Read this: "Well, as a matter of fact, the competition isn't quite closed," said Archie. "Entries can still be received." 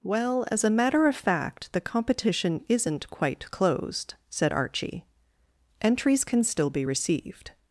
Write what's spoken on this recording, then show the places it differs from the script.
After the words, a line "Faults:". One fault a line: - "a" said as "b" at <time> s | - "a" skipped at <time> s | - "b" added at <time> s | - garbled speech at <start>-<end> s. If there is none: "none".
"Well, as a matter of fact, the competition isn't quite closed," said Archie. "Entries can still be received."
Faults:
none